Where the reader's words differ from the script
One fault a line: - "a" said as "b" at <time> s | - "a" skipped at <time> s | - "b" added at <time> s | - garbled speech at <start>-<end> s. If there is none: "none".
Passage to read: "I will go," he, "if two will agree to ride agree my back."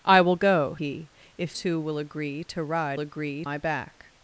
none